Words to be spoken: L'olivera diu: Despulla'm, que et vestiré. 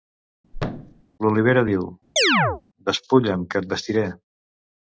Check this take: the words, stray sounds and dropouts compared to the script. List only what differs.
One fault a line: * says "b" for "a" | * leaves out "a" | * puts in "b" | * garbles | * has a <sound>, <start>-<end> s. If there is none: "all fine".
* has a thud, 0.5-1.0 s
* has a chirp, 2.2-2.6 s